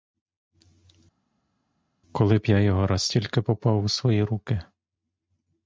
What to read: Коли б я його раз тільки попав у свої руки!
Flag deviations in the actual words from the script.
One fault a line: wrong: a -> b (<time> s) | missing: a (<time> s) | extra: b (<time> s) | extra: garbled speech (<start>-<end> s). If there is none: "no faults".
no faults